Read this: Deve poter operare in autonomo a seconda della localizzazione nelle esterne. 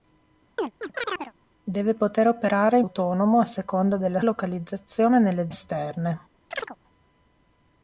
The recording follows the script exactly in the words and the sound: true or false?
false